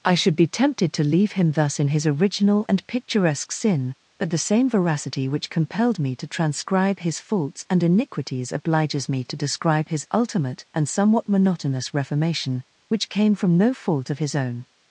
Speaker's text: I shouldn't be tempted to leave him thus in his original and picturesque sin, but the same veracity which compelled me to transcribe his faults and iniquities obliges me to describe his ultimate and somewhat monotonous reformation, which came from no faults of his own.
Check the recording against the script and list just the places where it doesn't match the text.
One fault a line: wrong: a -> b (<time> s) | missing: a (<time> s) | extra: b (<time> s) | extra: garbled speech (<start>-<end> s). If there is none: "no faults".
wrong: shouldn't -> should (0.1 s)
wrong: faults -> fault (13.8 s)